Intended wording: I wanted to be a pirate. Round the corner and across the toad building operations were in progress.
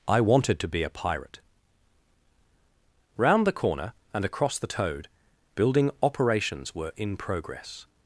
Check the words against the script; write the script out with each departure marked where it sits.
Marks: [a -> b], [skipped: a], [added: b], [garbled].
I wanted to be a pirate. Round the corner and across the toad building operations were in progress.